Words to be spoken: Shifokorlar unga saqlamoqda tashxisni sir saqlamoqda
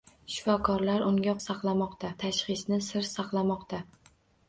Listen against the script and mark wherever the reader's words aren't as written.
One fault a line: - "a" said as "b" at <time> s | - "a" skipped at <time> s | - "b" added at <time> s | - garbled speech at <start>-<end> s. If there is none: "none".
none